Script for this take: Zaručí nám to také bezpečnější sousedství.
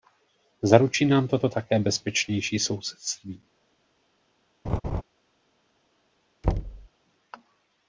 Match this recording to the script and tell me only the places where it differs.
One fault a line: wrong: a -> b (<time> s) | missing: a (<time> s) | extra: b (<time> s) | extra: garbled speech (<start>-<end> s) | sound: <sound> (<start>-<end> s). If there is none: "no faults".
extra: to (1.4 s)
sound: laugh (4.6-5.0 s)
sound: thud (6.4-6.9 s)